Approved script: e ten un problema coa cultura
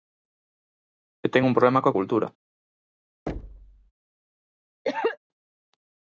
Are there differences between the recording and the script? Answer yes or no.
no